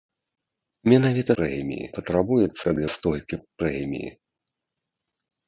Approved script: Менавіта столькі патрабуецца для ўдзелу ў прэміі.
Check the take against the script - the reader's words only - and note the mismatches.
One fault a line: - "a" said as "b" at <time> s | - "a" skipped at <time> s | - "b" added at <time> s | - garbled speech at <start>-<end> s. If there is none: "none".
- "столькі" said as "прэміі" at 1.4 s
- "ўдзелу" said as "столькі" at 2.9 s